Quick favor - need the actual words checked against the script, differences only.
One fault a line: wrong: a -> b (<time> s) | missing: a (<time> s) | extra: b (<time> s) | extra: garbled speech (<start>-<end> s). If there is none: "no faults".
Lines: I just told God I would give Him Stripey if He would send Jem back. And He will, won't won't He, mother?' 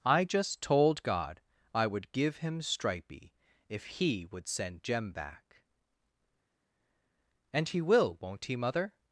missing: won't (8.5 s)